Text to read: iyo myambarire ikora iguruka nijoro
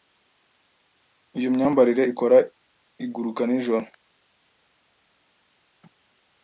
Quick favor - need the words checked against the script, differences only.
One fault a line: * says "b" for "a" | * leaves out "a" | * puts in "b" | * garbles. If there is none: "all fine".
all fine